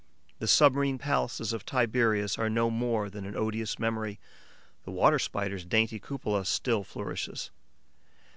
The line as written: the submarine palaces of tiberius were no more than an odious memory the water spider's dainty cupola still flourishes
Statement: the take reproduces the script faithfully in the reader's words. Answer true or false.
false